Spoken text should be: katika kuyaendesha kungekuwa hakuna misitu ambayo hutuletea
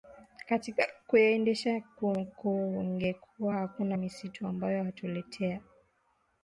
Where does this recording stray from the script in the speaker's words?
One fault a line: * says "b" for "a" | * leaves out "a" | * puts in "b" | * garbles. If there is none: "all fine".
all fine